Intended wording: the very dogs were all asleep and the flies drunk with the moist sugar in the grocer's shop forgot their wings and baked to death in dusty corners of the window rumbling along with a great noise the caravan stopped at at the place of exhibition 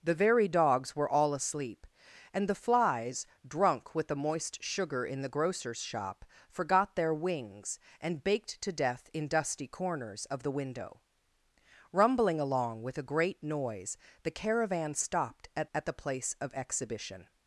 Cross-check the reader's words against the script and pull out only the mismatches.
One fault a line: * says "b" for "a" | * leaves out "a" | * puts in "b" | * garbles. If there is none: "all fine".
all fine